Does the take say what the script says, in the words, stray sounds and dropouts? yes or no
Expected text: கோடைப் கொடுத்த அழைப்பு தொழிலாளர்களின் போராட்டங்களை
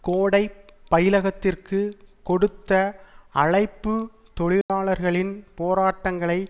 no